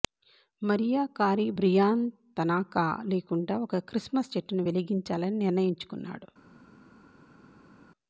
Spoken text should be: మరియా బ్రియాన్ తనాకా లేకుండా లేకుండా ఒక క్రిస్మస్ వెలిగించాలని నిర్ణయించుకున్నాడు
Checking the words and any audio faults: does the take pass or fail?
fail